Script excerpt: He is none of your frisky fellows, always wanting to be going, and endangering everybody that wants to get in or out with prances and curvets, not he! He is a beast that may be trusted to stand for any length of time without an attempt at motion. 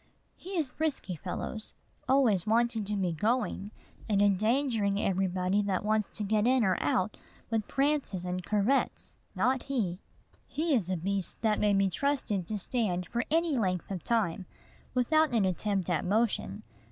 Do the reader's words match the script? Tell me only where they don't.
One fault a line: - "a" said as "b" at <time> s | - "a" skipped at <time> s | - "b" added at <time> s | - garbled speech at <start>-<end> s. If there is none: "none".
- "none of your" skipped at 0.7 s